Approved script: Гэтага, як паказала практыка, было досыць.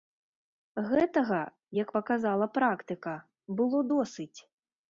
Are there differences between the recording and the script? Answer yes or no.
no